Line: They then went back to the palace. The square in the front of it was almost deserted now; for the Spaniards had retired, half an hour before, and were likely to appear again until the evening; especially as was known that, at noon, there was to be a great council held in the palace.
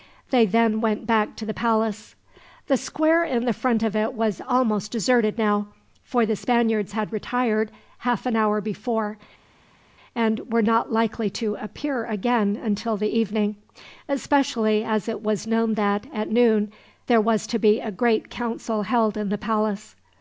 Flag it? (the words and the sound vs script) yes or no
yes